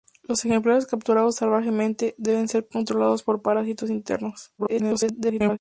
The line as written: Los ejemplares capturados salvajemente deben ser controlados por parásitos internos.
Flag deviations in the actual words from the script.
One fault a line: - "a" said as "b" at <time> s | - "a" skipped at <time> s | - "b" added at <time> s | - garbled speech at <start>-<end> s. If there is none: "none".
- garbled speech at 4.6-5.6 s